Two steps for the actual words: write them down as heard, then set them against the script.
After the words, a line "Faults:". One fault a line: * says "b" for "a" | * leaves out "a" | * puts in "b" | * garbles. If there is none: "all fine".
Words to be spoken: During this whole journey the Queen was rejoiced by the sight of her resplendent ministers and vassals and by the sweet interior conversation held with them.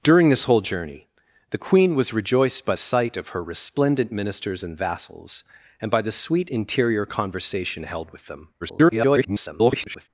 During this whole journey the Queen was rejoiced by sight of her resplendent ministers and vassals and by the sweet interior conversation held with them. [garbled]
Faults:
* leaves out "the"
* garbles